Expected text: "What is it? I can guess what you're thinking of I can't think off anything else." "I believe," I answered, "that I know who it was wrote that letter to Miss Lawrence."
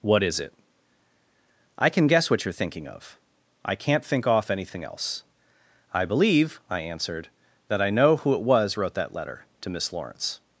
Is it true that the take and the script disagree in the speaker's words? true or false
false